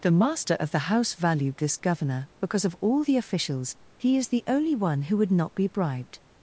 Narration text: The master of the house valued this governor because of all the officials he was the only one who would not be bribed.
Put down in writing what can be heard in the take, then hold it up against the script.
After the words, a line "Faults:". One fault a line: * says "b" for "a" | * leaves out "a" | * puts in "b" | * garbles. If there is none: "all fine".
The master of the house valued this governor because of all the officials he is the only one who would not be bribed.
Faults:
* says "is" for "was"